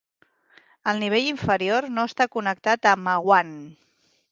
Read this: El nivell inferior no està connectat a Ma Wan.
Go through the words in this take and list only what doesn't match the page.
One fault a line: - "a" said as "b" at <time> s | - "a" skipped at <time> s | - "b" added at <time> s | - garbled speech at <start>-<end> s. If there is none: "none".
none